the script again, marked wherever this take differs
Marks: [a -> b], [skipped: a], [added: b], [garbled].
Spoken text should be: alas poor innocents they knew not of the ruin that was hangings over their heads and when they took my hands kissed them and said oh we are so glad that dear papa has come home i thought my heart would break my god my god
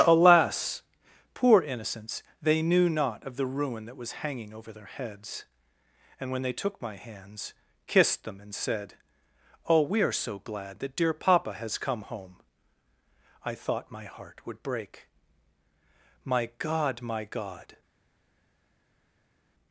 alas poor innocents they knew not of the ruin that was [hangings -> hanging] over their heads and when they took my hands kissed them and said oh we are so glad that dear papa has come home i thought my heart would break my god my god